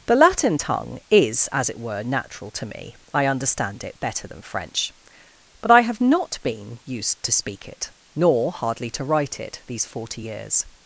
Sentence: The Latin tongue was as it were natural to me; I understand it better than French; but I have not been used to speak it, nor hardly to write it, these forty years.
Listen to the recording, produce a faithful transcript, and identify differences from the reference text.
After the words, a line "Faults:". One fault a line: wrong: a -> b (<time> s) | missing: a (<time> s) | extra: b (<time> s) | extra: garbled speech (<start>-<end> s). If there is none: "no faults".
The Latin tongue is as it were natural to me; I understand it better than French; but I have not been used to speak it, nor hardly to write it, these forty years.
Faults:
wrong: was -> is (1.1 s)